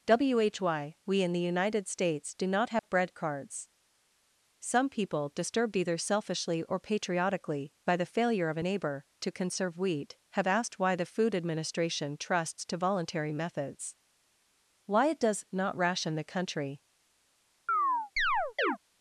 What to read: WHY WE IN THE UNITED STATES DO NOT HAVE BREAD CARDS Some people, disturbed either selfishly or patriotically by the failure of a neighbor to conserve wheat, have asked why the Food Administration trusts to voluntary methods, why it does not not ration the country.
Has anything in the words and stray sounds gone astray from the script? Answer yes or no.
yes